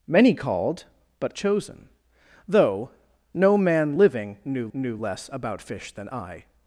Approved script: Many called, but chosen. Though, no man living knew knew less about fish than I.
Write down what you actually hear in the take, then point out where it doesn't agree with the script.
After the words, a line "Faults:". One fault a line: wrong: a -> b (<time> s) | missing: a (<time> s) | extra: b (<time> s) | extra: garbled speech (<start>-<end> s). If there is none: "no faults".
Many called, but chosen. Though, no man living knew knew less about fish than I.
Faults:
no faults